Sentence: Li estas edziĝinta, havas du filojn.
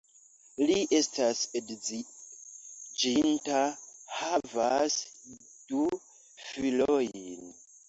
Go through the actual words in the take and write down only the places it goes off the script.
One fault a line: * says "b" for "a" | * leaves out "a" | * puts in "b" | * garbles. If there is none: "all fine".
all fine